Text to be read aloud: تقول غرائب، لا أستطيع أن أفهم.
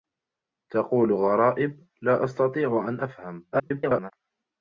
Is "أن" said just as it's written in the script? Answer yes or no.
yes